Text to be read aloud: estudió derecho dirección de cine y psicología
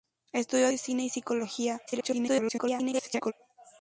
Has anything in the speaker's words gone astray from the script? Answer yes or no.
yes